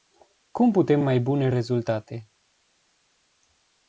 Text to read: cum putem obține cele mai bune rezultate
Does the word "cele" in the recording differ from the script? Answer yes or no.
yes